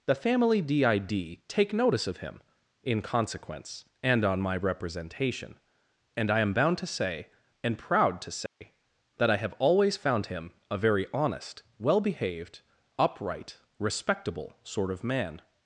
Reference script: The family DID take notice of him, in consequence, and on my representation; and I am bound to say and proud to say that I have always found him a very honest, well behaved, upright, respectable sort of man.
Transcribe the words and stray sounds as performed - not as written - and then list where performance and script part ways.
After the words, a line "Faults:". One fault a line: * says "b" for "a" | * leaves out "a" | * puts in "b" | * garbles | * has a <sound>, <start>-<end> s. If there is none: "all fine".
The family DID take notice of him, in consequence, and on my representation; and I am bound to say and proud to say that I have always found him a very honest, well behaved, upright, respectable sort of man.
Faults:
* has a dropout, 8.5-8.6 s